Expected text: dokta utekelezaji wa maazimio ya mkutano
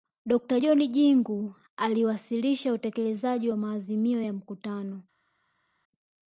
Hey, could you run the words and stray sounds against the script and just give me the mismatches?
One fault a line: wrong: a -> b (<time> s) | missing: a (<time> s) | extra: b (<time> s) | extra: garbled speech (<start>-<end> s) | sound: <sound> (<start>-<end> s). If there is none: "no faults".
extra: john jingu aliwasilisha (0.6 s)